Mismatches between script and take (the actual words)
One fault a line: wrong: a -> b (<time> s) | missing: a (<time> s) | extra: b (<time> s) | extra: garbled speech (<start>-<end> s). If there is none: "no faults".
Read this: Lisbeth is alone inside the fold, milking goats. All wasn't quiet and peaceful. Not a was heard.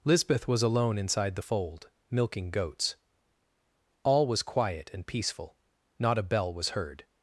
wrong: is -> was (0.5 s)
wrong: wasn't -> was (4.3 s)
extra: bell (6.2 s)